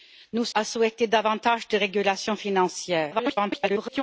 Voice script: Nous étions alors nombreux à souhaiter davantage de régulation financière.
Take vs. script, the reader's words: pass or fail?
fail